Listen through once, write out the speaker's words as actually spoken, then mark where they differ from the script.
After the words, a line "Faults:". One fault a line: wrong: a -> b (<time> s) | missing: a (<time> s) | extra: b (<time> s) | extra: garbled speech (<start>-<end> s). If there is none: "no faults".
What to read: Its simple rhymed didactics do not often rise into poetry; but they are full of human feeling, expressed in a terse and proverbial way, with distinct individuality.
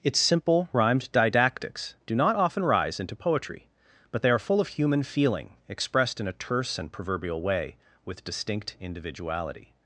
Its simple rhymed didactics do not often rise into poetry; but they are full of human feeling, expressed in a terse and proverbial way, with distinct individuality.
Faults:
no faults